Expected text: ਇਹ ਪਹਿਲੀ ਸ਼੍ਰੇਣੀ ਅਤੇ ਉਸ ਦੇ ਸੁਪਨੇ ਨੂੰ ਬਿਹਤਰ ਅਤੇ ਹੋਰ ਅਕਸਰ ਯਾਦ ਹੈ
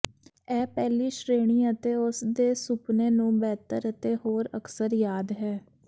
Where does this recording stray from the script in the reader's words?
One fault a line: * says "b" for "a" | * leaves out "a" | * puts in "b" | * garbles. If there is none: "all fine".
all fine